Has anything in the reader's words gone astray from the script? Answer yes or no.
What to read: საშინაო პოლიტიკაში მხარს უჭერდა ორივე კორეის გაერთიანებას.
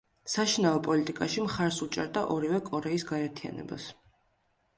no